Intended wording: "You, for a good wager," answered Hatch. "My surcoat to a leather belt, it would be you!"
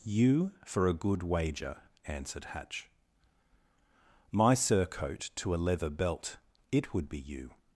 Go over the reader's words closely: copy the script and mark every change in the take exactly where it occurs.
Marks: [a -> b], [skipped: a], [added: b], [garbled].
"You, for a good wager," answered Hatch. "My surcoat to a leather belt, it would be you!"